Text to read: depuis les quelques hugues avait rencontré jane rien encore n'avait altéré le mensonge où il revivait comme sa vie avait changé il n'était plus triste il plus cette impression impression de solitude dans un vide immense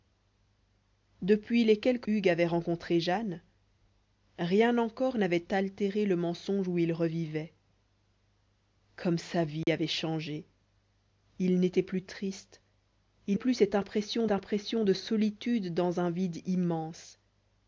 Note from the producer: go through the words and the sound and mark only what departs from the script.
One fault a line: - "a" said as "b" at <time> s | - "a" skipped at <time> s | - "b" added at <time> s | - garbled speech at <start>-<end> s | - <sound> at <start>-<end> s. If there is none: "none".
- dropout at 9.6-9.7 s